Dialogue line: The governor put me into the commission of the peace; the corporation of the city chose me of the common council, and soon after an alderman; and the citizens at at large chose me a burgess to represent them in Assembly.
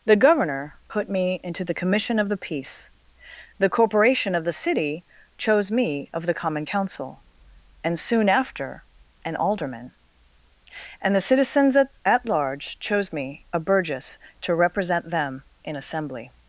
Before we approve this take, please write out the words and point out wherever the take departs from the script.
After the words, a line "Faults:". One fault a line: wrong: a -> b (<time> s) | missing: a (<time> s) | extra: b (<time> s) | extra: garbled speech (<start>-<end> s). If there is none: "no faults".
The governor put me into the commission of the peace; the corporation of the city chose me of the common council, and soon after an alderman; and the citizens at at large chose me a burgess to represent them in Assembly.
Faults:
no faults